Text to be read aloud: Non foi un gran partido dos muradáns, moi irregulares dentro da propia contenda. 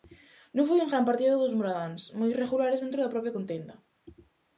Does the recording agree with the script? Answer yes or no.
yes